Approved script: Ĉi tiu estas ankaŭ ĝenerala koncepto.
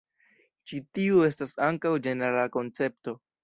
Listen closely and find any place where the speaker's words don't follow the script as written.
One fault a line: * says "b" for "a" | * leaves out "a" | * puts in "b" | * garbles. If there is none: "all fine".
all fine